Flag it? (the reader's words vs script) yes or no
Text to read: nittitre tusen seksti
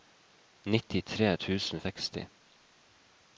no